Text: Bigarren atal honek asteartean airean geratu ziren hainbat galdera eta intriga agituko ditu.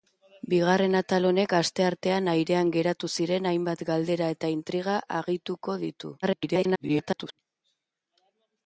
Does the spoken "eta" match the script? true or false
true